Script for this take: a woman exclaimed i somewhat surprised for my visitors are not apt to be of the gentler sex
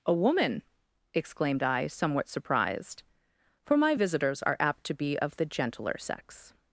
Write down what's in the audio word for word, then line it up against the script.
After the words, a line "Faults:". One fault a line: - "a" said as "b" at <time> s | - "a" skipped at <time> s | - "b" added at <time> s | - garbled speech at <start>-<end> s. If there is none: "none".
a woman exclaimed i somewhat surprised for my visitors are apt to be of the gentler sex
Faults:
- "not" skipped at 4.6 s